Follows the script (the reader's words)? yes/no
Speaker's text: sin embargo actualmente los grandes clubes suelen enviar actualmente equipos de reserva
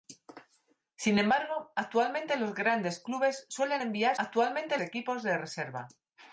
yes